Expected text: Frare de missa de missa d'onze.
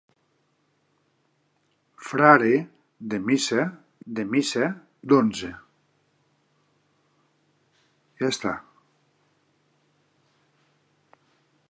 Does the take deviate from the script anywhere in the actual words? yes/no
no